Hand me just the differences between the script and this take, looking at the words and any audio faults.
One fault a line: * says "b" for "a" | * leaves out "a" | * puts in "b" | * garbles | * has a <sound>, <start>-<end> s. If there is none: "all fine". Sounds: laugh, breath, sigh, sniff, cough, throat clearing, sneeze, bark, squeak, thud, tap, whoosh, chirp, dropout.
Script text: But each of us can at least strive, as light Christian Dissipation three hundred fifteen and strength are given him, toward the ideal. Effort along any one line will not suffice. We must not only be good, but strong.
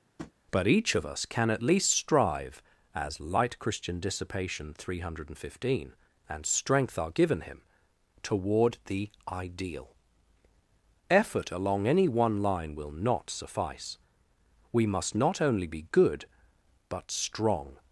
* has a tap, 0.2-0.3 s